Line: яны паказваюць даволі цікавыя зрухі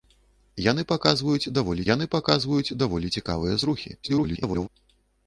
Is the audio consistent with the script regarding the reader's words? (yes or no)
no